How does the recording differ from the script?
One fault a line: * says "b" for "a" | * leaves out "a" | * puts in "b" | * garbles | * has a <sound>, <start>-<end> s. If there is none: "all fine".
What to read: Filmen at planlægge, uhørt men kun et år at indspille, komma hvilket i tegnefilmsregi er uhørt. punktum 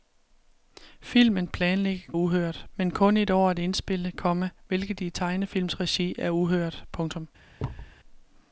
* has a thud, 7.6-8.0 s